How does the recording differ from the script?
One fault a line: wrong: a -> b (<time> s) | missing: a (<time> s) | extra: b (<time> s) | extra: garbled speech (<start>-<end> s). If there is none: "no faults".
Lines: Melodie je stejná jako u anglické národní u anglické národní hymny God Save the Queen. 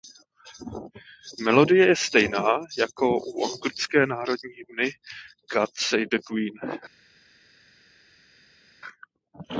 missing: u anglické národní (4.5 s)